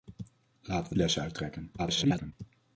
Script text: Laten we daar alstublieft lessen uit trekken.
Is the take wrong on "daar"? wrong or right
wrong